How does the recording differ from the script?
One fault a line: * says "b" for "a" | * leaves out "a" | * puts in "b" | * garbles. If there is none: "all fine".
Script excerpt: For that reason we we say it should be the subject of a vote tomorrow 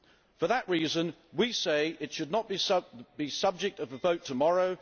* leaves out "we"
* puts in "not"